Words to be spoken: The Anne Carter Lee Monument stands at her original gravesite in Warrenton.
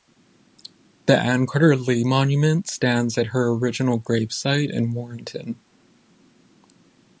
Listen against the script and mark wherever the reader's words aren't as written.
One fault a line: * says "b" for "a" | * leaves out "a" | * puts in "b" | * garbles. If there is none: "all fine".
all fine